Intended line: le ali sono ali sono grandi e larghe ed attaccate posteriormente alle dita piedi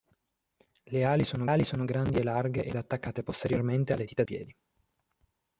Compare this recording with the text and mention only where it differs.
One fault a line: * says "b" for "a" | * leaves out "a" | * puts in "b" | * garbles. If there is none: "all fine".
all fine